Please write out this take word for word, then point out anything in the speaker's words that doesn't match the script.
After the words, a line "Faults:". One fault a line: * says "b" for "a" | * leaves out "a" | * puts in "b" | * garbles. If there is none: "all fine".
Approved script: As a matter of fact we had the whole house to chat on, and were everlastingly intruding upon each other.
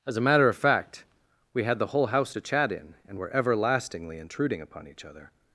As a matter of fact we had the whole house to chat in, and were everlastingly intruding upon each other.
Faults:
* says "in" for "on"